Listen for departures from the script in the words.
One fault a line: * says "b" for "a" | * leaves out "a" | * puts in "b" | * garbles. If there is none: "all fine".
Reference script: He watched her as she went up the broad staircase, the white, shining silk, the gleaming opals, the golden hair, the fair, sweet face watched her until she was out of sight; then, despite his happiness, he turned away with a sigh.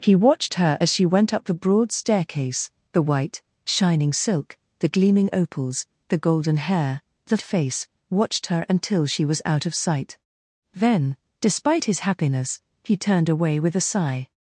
* leaves out "fair sweet"